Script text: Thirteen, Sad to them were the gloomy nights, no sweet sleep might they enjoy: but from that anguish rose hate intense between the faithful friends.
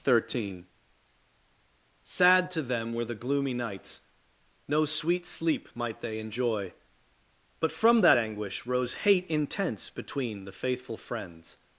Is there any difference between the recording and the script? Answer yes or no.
no